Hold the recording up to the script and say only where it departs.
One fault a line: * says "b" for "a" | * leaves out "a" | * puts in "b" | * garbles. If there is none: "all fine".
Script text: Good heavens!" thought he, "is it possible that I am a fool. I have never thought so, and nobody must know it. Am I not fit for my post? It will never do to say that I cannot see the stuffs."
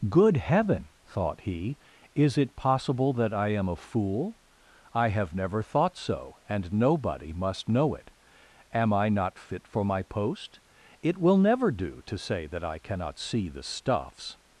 * says "heaven" for "heavens"